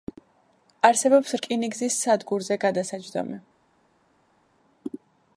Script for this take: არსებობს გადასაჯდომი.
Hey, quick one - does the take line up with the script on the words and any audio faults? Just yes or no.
no